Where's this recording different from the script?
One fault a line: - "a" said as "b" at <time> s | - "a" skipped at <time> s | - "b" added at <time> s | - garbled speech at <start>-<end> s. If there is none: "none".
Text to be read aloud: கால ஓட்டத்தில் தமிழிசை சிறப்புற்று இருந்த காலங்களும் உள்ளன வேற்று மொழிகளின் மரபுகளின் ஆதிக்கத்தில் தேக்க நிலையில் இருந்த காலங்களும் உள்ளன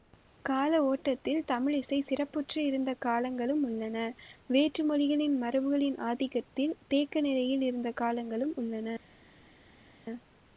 none